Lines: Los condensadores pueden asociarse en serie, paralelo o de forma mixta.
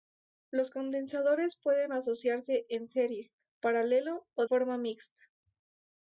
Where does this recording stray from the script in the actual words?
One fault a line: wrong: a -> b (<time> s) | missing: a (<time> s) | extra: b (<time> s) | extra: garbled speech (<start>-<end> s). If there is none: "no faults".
missing: de (4.5 s)